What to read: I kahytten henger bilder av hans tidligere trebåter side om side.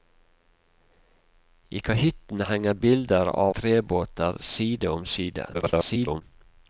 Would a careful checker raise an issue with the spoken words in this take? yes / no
yes